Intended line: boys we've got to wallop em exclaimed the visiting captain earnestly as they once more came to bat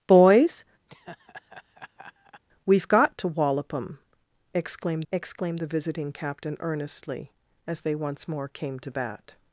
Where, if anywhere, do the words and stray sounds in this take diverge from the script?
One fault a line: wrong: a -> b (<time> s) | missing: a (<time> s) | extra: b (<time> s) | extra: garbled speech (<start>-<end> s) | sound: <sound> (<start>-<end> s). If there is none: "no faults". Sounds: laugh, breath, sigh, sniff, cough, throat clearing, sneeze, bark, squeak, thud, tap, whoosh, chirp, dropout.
sound: laugh (0.9-2.4 s)
extra: exclaimed (5.1 s)